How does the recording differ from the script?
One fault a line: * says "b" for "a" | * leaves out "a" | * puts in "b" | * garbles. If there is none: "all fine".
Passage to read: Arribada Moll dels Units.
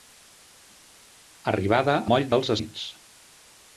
all fine